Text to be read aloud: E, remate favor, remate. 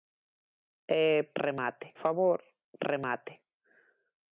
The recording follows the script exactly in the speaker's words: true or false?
true